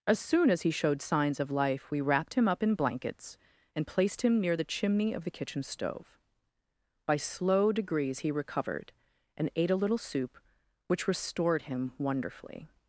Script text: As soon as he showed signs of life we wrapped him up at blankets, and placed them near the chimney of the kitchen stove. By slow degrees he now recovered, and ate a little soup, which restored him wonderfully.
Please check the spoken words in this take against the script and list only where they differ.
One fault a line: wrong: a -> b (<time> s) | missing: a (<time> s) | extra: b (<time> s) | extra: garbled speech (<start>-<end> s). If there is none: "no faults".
wrong: at -> in (2.6 s)
wrong: them -> him (4.2 s)
missing: now (8.3 s)